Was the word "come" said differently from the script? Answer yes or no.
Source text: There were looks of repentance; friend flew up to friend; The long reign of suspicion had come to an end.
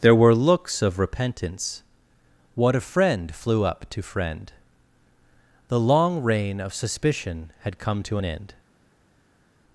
no